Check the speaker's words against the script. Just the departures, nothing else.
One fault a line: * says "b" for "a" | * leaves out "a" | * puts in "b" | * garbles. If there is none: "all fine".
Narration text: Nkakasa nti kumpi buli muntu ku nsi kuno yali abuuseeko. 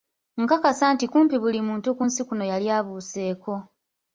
all fine